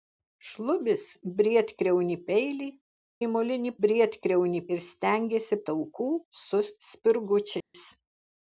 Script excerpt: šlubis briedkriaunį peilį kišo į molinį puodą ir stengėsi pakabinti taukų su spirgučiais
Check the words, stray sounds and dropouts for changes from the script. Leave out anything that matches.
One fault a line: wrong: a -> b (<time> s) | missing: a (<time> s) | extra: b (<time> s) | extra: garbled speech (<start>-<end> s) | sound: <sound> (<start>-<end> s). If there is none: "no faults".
missing: kišo (2.7 s)
wrong: puodą -> briedkriaunį (3.9 s)
missing: pakabinti (5.6 s)
sound: dropout (7.6-7.7 s)